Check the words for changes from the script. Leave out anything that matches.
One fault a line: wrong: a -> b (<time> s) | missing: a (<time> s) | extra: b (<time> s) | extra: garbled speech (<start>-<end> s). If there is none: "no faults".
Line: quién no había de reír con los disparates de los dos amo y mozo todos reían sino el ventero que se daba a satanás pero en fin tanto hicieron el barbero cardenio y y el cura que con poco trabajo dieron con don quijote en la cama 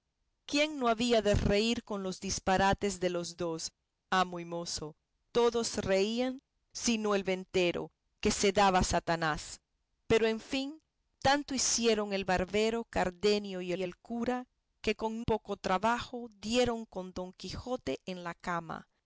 no faults